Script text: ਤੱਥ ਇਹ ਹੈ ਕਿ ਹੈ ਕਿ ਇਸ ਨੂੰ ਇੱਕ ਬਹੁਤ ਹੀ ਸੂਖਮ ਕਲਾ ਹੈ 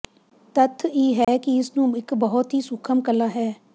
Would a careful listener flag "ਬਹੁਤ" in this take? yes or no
no